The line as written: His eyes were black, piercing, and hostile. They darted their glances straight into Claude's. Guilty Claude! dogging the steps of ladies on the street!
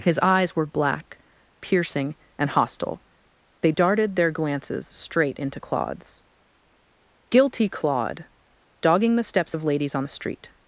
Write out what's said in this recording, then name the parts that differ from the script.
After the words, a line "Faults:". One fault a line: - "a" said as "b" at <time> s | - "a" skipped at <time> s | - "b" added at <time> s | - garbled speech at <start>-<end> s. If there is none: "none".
His eyes were black, piercing, and hostile. They darted their glances straight into Claude's. Guilty Claude! dogging the steps of ladies on the street!
Faults:
none